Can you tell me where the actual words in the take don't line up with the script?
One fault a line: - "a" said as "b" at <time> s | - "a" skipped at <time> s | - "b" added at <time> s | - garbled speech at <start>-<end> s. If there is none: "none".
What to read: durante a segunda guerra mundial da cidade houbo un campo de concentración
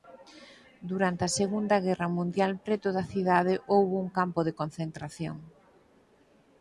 - "preto" added at 2.6 s